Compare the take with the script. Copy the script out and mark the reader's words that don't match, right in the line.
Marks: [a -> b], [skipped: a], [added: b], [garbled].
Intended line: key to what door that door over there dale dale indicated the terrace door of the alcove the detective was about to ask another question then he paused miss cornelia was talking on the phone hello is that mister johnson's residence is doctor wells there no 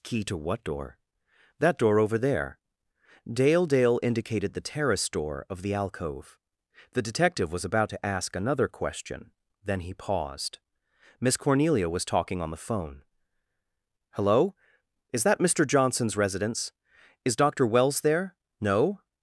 key to what door that door over there dale dale indicated the terrace door of the alcove the detective was about to ask another question then he paused miss cornelia was talking on the phone hello is that mister johnson's residence is doctor wells there no